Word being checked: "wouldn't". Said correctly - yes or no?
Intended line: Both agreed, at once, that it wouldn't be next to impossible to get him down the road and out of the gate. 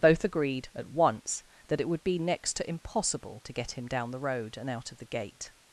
no